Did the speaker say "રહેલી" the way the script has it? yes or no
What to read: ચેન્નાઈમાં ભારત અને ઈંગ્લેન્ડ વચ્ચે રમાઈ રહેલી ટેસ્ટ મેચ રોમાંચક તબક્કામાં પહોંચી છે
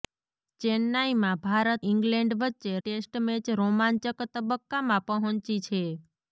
no